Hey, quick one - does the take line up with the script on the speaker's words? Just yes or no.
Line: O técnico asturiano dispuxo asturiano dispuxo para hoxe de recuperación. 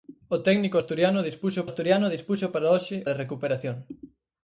yes